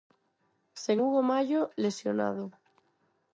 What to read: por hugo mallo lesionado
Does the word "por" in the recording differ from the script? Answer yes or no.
yes